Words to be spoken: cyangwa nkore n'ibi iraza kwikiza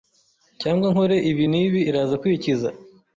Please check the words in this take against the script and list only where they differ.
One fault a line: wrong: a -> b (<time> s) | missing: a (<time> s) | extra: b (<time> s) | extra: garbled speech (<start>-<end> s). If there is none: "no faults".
extra: ibi (1.3 s)